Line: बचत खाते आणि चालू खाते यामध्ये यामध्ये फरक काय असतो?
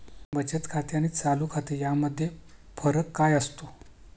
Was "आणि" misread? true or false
false